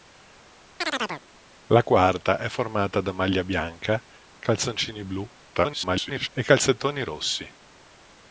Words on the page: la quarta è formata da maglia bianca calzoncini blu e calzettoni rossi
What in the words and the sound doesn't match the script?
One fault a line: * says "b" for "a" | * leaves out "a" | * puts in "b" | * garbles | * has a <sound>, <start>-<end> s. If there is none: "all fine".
* has a chirp, 0.8-1.2 s
* garbles